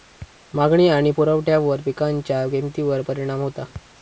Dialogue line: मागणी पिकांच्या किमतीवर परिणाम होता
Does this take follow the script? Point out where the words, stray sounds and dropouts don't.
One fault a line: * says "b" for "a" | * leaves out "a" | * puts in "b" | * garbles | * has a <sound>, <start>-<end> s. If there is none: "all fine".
* puts in "आणि पुरवठ्यावर"